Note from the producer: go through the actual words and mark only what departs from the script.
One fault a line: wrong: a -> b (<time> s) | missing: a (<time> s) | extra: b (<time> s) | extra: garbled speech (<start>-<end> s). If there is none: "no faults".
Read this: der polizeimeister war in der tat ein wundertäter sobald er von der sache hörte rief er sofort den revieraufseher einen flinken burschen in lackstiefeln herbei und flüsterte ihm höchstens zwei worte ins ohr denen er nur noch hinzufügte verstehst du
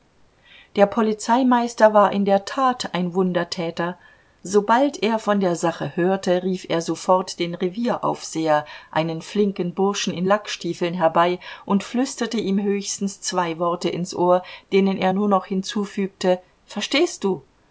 no faults